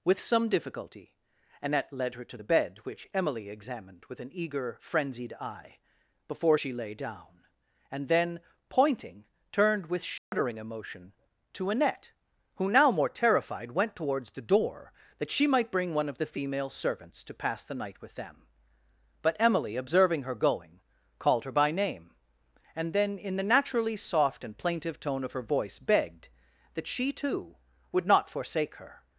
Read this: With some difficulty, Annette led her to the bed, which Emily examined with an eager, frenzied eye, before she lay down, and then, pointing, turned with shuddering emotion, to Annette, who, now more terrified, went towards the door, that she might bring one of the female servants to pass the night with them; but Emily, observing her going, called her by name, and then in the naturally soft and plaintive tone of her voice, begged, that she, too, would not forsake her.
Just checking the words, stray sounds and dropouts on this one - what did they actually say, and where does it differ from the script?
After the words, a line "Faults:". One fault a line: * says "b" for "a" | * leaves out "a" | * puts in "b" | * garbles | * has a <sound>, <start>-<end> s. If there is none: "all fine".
With some difficulty, Annette led her to the bed, which Emily examined with an eager, frenzied eye, before she lay down, and then, pointing, turned with shuddering emotion, to Annette, who, now more terrified, went towards the door, that she might bring one of the female servants to pass the night with them; but Emily, observing her going, called her by name, and then in the naturally soft and plaintive tone of her voice, begged, that she, too, would not forsake her.
Faults:
* has a dropout, 10.2-10.3 s